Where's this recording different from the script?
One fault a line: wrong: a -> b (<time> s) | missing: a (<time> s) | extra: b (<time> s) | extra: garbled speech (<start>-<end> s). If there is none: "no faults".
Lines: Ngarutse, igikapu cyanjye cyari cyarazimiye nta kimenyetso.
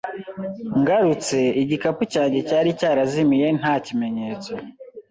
no faults